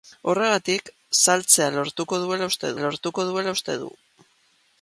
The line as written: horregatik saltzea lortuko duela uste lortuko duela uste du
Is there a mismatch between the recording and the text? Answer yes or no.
no